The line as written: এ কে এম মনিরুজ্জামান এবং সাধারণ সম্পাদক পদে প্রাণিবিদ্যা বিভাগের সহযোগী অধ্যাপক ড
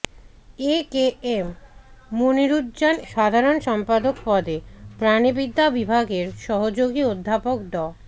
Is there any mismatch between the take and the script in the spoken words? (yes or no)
yes